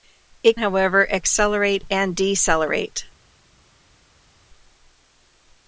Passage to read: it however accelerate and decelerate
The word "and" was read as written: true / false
true